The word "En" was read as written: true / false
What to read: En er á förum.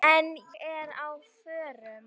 true